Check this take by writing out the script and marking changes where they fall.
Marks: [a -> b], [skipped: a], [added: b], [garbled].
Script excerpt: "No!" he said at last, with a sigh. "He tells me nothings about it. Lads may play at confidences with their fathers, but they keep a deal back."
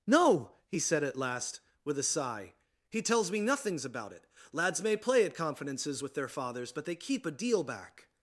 "No!" he said at last, with a sigh. "He tells me nothings about it. Lads may play at confidences with their fathers, but they keep a deal back."